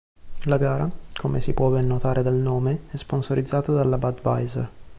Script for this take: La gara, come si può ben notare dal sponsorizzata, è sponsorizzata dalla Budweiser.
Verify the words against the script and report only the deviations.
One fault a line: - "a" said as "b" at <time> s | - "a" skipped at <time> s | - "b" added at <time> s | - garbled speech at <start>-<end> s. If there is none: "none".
- "sponsorizzata" said as "nome" at 2.3 s